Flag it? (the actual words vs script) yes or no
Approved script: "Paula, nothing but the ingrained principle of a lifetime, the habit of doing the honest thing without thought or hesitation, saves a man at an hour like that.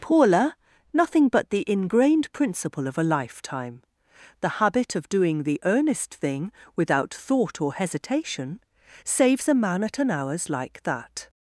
yes